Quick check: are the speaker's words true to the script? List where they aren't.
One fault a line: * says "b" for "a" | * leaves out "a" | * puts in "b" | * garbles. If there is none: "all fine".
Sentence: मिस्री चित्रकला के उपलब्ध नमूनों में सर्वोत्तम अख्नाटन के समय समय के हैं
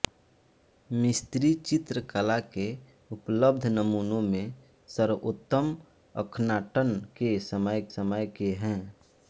all fine